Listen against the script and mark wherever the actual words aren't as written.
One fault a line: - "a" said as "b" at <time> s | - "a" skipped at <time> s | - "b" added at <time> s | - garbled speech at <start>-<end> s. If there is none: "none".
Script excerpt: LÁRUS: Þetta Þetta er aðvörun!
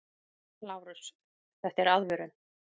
- "Þetta" skipped at 1.8 s